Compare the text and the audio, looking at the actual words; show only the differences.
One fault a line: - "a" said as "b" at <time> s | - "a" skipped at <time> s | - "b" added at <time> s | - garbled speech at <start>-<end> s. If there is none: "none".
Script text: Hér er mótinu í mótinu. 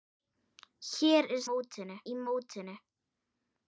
none